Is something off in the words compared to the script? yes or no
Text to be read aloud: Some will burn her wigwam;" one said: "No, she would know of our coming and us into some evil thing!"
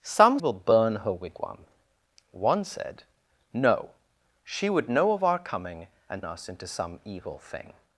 no